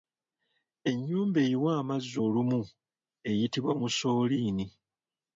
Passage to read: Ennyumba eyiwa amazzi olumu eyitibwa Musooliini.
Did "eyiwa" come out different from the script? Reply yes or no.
no